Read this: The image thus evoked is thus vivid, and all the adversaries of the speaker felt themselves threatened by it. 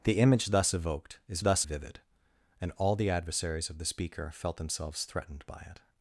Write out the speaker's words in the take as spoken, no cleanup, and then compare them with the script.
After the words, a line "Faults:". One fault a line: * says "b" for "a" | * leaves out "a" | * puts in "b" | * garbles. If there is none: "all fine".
The image thus evoked is thus vivid, and all the adversaries of the speaker felt themselves threatened by it.
Faults:
all fine